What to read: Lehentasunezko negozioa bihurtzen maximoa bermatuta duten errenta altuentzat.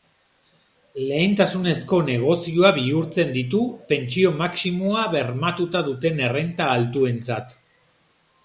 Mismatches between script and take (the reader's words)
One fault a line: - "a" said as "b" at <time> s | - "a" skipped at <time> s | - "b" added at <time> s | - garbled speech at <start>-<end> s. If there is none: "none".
- "ditu pentsio" added at 3.4 s